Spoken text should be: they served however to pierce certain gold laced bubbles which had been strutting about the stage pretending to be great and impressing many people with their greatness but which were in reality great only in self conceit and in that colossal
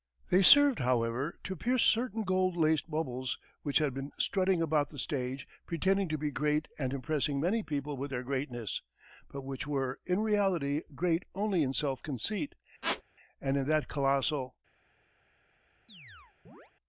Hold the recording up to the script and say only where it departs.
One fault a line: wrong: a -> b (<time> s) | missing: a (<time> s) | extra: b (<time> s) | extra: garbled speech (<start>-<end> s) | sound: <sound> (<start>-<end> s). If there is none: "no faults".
sound: squeak (12.8-13.0 s)
sound: chirp (15.9-16.7 s)